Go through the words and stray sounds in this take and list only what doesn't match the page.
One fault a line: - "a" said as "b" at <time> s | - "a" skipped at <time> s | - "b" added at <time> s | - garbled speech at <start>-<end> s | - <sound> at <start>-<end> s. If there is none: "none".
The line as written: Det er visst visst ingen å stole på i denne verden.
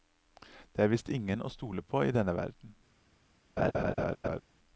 - "visst" skipped at 1.1 s
- laugh at 3.6-4.4 s